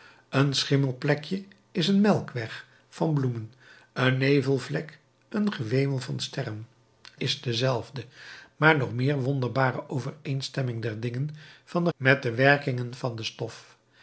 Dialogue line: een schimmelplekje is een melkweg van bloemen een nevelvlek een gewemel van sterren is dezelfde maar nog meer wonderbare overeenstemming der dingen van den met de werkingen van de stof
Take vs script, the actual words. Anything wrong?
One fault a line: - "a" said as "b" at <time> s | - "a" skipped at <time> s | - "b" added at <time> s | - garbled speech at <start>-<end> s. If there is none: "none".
none